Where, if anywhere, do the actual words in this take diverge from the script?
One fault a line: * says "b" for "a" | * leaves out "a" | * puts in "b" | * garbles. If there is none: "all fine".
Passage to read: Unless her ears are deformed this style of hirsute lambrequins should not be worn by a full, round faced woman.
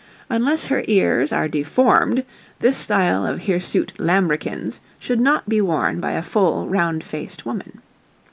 all fine